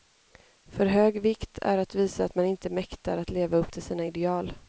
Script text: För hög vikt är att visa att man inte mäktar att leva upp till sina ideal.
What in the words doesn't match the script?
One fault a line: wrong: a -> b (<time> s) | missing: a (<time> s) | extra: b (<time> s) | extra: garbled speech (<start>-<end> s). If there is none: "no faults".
no faults